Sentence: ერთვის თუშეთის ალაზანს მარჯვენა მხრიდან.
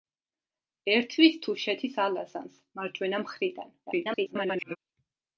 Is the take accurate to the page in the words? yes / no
no